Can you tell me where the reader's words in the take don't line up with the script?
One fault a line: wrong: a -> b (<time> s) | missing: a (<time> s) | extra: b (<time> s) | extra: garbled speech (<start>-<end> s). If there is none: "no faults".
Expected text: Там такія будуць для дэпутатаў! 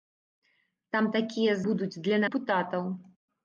no faults